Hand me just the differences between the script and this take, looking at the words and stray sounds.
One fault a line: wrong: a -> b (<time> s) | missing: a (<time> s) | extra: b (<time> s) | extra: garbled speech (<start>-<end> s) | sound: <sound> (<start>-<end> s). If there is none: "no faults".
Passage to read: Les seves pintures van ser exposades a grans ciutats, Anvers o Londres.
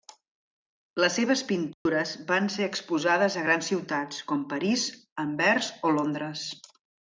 sound: dropout (1.7-1.9 s)
extra: com París (4.3 s)